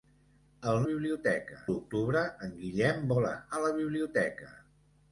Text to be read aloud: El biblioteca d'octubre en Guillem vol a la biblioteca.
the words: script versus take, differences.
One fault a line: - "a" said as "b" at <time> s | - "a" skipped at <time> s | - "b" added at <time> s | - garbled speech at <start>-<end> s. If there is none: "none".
none